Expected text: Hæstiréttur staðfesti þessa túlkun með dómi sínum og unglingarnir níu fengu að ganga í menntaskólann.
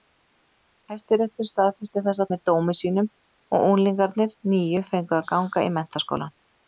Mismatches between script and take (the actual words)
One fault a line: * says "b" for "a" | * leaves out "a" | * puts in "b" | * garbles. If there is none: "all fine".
* leaves out "túlkun"